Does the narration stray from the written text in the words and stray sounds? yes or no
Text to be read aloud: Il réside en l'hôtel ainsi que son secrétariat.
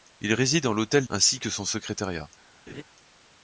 yes